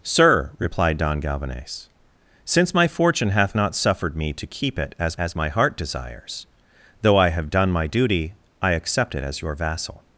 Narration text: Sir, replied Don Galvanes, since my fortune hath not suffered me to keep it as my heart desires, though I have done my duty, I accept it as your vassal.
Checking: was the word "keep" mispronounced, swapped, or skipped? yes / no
no